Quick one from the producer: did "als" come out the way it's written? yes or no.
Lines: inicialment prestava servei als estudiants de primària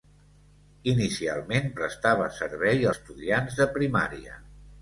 no